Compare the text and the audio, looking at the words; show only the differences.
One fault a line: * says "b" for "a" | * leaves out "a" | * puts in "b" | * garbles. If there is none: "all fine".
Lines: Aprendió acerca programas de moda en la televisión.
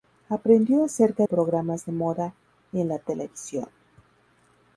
all fine